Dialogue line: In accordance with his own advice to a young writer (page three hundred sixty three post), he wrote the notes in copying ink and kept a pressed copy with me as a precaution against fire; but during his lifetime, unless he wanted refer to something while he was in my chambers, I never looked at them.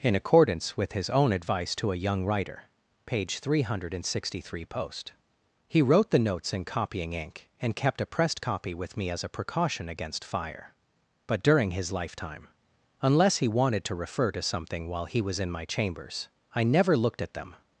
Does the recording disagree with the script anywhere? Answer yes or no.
yes